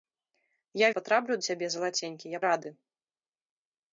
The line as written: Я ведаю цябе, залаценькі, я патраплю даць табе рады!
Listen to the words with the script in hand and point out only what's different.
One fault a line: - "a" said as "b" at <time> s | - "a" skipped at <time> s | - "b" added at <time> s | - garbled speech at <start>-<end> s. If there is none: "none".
- "ведаю" said as "патраплю" at 1.0 s
- "патраплю даць табе" skipped at 2.4 s